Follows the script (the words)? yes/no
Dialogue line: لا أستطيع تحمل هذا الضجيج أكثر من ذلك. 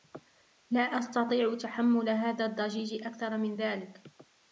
yes